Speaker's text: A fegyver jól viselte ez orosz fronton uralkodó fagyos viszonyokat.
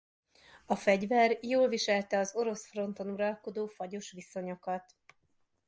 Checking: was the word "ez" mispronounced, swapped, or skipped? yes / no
yes